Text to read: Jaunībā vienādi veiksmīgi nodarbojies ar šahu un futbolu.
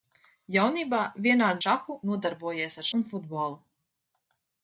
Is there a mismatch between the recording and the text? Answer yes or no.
yes